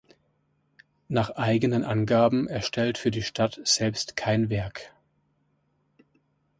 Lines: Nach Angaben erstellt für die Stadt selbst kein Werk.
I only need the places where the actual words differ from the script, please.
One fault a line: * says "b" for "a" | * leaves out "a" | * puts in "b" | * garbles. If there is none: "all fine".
* puts in "eigenen"